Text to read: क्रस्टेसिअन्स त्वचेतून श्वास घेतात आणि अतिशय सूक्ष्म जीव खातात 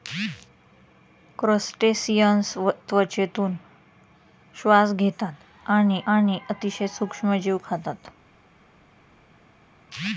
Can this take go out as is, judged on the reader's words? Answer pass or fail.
fail